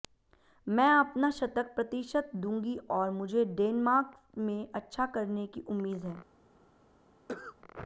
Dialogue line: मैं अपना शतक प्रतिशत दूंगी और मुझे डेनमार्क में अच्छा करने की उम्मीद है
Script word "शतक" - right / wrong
right